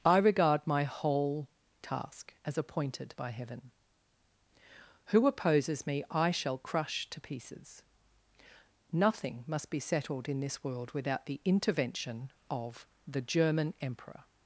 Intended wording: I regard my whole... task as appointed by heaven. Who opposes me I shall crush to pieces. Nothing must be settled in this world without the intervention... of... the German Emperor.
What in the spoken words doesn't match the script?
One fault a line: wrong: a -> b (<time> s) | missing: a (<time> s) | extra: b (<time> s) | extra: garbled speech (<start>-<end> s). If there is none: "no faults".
no faults